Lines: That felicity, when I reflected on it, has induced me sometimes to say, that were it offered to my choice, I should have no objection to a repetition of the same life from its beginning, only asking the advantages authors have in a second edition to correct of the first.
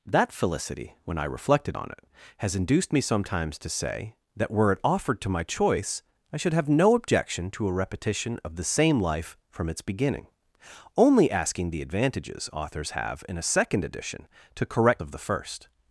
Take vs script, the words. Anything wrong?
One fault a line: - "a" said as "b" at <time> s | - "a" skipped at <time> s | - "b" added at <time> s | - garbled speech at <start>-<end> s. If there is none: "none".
none